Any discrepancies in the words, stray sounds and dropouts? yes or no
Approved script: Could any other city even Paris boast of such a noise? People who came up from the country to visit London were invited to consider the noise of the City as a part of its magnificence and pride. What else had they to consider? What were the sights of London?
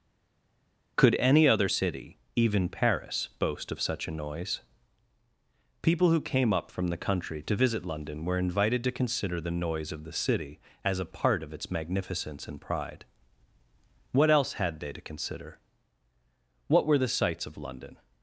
no